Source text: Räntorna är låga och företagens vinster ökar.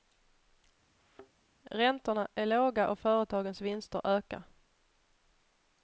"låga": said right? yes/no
yes